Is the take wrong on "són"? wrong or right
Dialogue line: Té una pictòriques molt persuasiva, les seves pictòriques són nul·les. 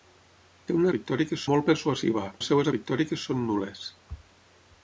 right